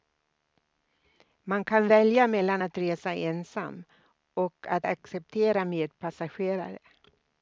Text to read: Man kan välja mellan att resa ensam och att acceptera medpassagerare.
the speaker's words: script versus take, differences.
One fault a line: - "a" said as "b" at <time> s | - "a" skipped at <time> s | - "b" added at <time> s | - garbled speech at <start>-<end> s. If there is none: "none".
none